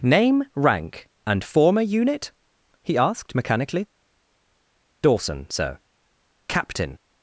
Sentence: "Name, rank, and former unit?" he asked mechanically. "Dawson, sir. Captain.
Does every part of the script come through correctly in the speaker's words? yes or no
yes